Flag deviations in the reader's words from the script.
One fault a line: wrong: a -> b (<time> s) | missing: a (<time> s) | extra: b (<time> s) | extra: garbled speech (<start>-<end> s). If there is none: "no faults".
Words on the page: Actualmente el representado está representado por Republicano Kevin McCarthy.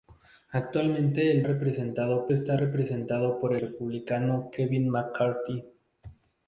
no faults